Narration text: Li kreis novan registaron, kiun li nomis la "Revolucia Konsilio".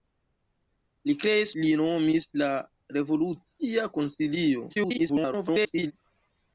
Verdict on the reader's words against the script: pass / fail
fail